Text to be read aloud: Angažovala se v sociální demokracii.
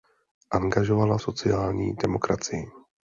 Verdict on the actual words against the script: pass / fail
fail